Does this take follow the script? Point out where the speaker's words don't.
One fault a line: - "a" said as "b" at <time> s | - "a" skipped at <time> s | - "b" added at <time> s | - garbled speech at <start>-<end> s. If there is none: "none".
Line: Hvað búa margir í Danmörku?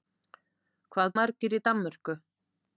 - "búa" skipped at 1.1 s